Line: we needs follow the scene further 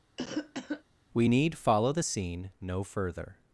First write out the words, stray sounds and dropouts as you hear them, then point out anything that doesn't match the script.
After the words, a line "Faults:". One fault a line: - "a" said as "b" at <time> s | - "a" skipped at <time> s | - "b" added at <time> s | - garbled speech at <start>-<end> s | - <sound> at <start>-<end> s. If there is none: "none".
we need follow the scene no further
Faults:
- cough at 0.2-0.8 s
- "needs" said as "need" at 1.2 s
- "no" added at 2.6 s